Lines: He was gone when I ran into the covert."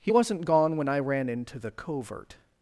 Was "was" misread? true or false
true